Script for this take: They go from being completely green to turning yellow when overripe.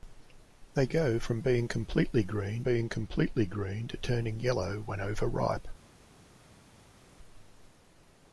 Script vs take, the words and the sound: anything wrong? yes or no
yes